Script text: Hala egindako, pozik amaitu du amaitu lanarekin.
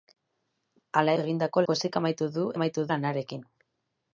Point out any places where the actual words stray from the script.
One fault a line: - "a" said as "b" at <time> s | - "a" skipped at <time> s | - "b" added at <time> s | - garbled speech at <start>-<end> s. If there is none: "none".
none